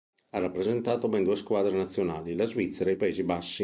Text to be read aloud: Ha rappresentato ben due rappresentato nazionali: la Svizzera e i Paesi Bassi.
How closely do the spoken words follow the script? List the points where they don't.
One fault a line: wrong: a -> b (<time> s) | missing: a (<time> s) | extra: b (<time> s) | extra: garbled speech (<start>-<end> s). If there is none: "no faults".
wrong: rappresentato -> squadre (1.4 s)